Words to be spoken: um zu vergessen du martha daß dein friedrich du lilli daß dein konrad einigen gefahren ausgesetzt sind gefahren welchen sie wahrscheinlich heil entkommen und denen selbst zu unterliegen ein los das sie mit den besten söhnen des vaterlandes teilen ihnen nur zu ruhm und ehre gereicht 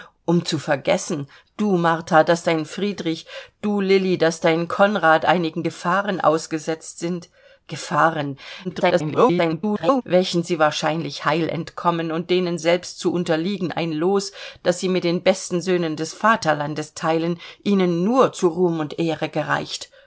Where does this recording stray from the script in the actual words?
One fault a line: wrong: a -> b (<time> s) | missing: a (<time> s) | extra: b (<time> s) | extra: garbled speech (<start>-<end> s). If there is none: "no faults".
extra: garbled speech (8.6-10.0 s)